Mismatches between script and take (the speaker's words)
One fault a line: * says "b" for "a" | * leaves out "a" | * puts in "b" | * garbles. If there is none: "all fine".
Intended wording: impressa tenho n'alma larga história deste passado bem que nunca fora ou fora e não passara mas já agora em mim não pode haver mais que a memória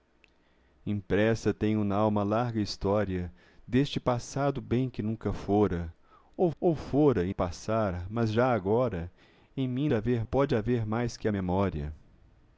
* puts in "ou"
* leaves out "não"
* says "haver" for "não"